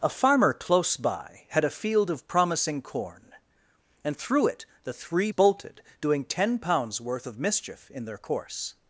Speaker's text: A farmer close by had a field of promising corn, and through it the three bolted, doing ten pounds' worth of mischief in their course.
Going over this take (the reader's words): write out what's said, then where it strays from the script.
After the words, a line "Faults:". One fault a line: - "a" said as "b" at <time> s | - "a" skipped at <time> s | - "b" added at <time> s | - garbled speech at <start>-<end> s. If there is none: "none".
A farmer close by had a field of promising corn, and through it the three bolted, doing ten pounds' worth of mischief in their course.
Faults:
none